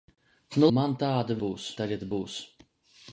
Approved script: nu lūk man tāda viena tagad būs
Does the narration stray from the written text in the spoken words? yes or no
yes